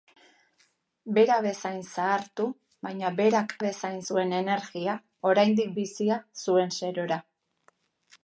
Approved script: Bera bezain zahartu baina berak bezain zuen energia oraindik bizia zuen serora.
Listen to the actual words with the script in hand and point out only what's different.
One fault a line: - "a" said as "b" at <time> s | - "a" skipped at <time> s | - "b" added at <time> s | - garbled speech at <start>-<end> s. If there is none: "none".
none